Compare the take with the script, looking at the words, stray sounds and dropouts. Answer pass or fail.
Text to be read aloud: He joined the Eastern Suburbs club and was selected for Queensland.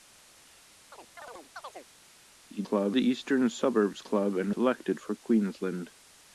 fail